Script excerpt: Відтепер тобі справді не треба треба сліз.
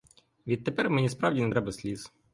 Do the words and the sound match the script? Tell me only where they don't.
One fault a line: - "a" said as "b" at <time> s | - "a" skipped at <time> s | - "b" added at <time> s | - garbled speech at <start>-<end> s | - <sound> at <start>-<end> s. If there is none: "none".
- "тобі" said as "мені" at 0.9 s
- "треба" skipped at 1.7 s